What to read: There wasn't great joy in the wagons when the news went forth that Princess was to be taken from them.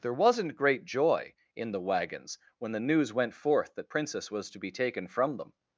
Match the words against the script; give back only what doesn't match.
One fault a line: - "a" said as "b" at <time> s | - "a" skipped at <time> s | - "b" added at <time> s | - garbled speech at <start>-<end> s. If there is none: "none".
none